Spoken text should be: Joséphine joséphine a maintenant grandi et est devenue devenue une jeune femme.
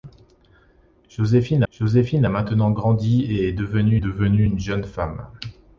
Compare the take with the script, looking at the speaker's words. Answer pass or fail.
pass